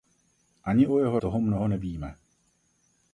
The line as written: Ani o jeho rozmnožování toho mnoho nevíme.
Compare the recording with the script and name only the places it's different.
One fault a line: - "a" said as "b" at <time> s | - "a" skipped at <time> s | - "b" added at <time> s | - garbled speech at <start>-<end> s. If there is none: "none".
- "rozmnožování" skipped at 1.2 s